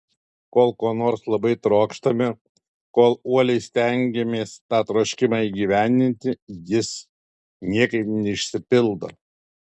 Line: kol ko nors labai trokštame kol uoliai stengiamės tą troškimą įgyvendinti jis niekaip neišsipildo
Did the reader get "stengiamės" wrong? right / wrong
right